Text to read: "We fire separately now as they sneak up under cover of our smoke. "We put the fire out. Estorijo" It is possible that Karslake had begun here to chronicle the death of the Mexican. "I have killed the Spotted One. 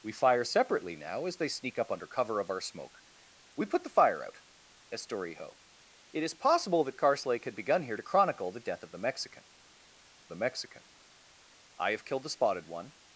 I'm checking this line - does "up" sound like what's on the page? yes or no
yes